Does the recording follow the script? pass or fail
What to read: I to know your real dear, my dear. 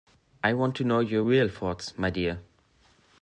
fail